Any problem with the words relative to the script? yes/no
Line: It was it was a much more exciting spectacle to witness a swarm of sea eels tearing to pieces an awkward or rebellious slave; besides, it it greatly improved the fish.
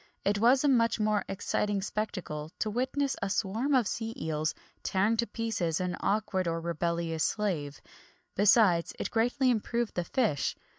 yes